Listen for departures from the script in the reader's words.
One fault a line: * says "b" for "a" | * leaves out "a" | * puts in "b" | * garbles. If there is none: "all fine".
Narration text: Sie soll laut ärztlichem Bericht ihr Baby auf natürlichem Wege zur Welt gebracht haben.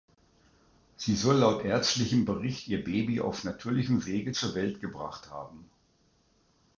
all fine